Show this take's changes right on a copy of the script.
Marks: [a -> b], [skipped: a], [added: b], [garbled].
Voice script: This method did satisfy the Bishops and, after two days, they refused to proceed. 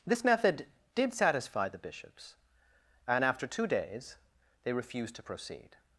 This method did satisfy the Bishops and, after two days, they refused to proceed.